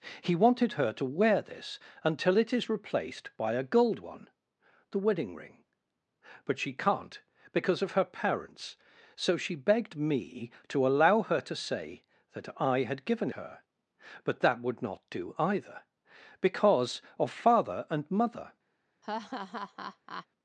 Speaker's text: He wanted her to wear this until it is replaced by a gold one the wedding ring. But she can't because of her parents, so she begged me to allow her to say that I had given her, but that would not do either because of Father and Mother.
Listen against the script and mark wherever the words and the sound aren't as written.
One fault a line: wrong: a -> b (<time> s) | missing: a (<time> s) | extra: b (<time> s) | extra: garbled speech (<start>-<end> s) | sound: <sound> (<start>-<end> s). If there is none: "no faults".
sound: laugh (19.0-20.3 s)